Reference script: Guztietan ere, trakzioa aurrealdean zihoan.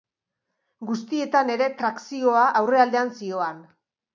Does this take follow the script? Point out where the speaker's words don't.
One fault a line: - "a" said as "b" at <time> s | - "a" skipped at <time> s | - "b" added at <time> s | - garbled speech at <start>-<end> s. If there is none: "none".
none